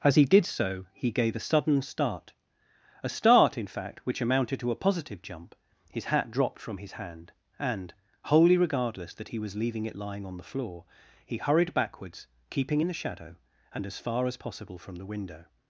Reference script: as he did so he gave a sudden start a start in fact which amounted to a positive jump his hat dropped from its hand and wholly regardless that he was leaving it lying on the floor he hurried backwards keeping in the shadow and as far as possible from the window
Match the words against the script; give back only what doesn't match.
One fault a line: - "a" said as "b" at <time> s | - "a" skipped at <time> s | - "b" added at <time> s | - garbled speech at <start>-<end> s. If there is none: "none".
- "its" said as "his" at 6.7 s